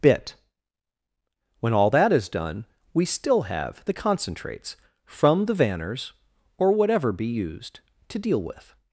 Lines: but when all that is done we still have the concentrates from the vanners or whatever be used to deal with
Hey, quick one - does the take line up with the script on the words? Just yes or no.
no